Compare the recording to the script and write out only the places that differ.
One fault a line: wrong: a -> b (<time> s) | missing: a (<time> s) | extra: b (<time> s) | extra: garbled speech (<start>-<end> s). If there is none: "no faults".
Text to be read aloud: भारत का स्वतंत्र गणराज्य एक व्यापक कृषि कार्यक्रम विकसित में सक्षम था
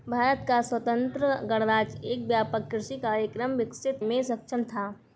no faults